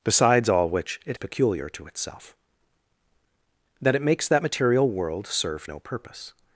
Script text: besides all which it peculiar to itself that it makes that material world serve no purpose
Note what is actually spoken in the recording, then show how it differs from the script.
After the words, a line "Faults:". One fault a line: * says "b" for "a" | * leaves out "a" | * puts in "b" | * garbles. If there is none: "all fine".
besides all which it peculiar to itself that it makes that material world serve no purpose
Faults:
all fine